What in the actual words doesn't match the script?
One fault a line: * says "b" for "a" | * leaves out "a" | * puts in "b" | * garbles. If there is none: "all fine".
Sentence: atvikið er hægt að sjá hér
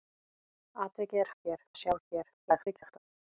* says "hér" for "hægt"
* garbles